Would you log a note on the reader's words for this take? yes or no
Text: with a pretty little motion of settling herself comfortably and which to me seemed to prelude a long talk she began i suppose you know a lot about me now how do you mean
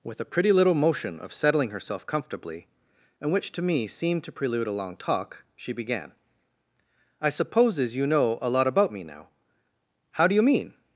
yes